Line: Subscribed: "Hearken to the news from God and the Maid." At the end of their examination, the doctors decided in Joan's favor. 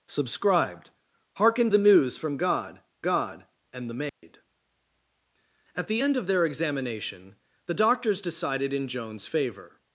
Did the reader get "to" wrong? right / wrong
wrong